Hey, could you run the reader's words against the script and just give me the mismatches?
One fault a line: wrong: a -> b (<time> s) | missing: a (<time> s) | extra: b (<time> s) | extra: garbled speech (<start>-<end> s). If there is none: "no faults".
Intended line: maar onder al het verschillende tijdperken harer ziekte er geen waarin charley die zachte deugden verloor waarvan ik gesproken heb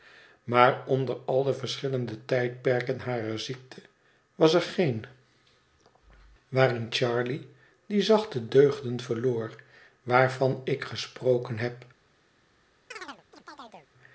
wrong: het -> de (1.4 s)
extra: was (4.3 s)